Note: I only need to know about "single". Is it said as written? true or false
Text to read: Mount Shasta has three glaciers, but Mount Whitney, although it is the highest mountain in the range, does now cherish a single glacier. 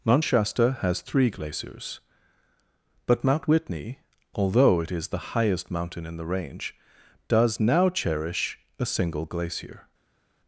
true